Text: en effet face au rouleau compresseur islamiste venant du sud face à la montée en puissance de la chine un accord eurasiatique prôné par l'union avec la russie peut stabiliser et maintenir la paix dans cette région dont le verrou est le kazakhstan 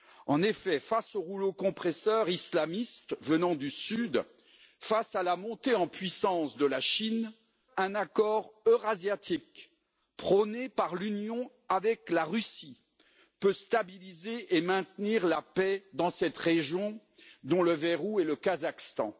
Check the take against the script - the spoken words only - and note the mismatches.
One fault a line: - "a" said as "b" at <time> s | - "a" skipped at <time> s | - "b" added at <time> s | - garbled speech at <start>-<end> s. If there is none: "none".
none